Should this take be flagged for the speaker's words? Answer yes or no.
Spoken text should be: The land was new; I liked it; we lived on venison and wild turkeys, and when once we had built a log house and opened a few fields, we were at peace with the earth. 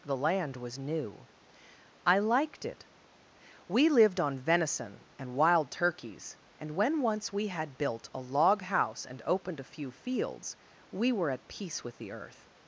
no